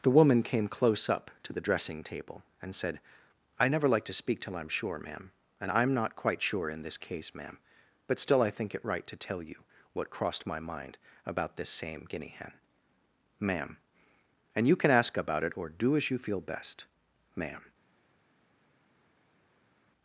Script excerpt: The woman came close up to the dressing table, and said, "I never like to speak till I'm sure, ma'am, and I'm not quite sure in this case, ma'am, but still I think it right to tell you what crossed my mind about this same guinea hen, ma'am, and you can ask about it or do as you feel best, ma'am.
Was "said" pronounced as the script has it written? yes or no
yes